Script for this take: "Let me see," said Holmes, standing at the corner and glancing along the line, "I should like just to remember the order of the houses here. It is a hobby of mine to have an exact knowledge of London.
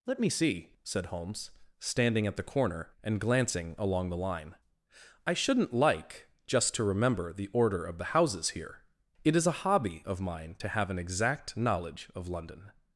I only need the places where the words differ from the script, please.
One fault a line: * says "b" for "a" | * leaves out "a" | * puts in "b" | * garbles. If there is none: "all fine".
* says "shouldn't" for "should"